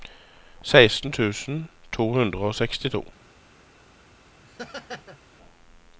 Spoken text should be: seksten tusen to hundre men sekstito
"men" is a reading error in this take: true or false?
true